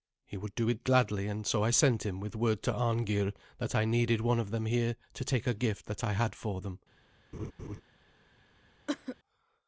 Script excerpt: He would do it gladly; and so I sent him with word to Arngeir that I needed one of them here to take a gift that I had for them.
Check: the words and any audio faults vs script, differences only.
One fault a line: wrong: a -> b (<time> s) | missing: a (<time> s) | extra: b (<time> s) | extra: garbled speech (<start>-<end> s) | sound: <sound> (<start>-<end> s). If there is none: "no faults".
sound: laugh (7.3-7.8 s)
sound: cough (8.9-9.2 s)